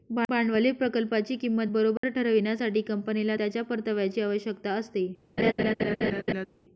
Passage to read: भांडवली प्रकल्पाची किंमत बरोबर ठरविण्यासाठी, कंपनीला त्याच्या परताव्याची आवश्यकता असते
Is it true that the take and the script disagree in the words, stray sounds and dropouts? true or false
true